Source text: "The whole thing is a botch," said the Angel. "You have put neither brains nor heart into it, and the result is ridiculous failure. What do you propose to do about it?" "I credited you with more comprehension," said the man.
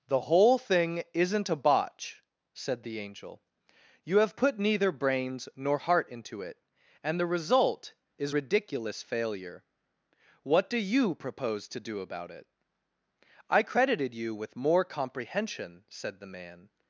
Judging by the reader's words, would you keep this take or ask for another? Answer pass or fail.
fail